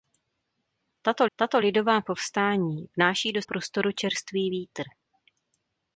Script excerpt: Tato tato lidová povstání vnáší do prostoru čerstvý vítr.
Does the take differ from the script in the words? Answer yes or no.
no